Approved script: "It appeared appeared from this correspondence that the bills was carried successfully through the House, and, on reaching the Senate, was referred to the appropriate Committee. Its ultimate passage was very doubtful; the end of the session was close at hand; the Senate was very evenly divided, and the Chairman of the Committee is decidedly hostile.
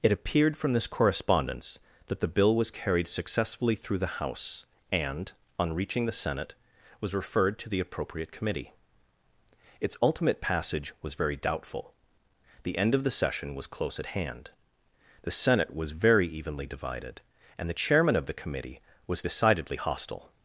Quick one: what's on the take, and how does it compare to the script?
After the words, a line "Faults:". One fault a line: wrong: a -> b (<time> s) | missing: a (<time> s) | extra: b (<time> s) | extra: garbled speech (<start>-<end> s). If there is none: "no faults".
"It appeared from this correspondence that the bill was carried successfully through the House, and, on reaching the Senate, was referred to the appropriate Committee. Its ultimate passage was very doubtful; the end of the session was close at hand; the Senate was very evenly divided, and the Chairman of the Committee was decidedly hostile.
Faults:
missing: appeared (0.6 s)
wrong: bills -> bill (2.3 s)
wrong: is -> was (19.1 s)